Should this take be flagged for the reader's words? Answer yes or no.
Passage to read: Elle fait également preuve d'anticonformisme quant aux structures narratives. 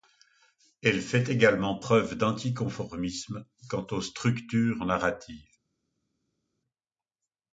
no